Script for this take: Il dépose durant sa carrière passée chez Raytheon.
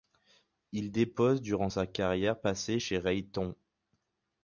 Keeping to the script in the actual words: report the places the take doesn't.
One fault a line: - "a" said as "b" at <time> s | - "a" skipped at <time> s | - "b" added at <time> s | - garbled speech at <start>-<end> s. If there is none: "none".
none